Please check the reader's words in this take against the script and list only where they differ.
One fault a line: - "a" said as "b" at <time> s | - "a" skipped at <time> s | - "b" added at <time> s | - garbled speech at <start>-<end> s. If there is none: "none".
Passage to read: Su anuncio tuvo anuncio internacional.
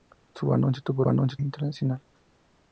none